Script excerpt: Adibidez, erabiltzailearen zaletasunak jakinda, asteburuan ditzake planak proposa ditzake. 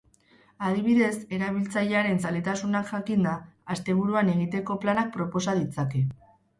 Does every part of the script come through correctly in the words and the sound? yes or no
no